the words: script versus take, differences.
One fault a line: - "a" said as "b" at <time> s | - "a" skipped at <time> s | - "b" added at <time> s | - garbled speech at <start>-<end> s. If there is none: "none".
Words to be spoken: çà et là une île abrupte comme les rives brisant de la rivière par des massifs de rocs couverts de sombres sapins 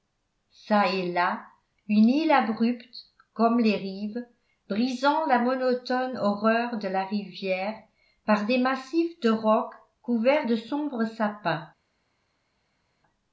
- "la monotone horreur" added at 5.3 s